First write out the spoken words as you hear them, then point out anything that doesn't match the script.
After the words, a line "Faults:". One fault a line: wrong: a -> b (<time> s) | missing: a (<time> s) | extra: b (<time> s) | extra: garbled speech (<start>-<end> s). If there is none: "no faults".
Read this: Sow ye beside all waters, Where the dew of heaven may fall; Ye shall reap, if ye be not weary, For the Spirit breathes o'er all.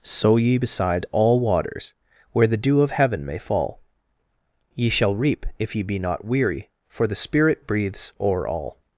Sow ye beside all waters, Where the dew of heaven may fall; Ye shall reap, if ye be not weary, For the Spirit breathes o'er all.
Faults:
no faults